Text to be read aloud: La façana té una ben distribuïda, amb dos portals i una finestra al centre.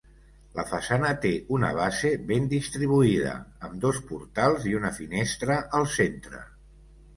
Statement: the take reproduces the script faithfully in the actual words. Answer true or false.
false